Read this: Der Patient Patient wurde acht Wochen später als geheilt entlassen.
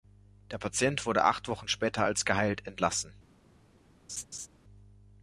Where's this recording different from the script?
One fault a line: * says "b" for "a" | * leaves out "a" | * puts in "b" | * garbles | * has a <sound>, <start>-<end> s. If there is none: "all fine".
* leaves out "Patient"
* has a laugh, 4.1-4.5 s